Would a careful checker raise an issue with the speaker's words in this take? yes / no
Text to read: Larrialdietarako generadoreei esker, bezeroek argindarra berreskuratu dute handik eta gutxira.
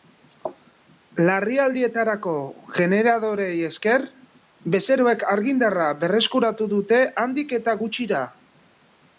no